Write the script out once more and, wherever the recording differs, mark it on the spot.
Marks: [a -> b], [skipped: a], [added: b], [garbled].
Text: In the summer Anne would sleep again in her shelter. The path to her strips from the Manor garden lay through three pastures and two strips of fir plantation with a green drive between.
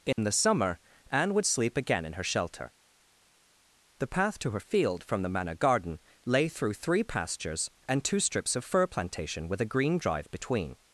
In the summer Anne would sleep again in her shelter. The path to her [strips -> field] from the Manor garden lay through three pastures and two strips of fir plantation with a green drive between.